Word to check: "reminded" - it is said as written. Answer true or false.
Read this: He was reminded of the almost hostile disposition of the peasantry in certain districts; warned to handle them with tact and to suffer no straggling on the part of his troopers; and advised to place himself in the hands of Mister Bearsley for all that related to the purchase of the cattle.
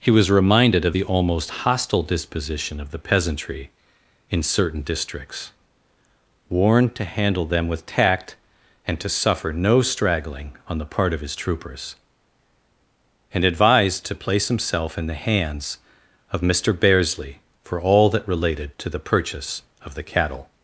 true